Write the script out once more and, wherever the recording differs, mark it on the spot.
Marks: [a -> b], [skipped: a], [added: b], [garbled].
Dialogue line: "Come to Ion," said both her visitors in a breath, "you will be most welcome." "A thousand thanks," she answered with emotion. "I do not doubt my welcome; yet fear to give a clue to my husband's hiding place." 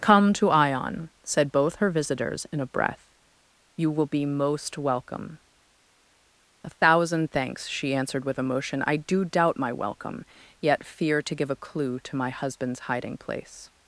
"Come to Ion," said both her visitors in a breath, "you will be most welcome." "A thousand thanks," she answered with emotion. "I do [skipped: not] doubt my welcome; yet fear to give a clue to my husband's hiding place."